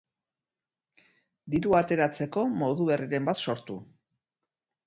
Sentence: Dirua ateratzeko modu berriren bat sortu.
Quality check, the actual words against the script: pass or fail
pass